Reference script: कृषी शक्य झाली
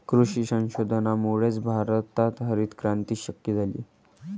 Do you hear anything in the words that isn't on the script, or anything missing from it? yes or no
yes